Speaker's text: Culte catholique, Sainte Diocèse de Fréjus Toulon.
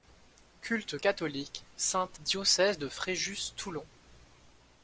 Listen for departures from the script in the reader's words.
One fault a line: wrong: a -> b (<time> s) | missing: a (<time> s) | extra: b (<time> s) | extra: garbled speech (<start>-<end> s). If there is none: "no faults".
no faults